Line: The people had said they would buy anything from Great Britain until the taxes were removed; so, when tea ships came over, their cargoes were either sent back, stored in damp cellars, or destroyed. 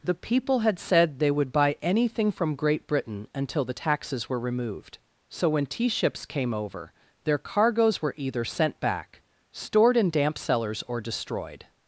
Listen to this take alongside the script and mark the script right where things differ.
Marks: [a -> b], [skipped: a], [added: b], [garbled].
The people had said they would buy anything from Great Britain until the taxes were removed; so, when tea ships came over, their cargoes were either sent back, stored in damp cellars, or destroyed.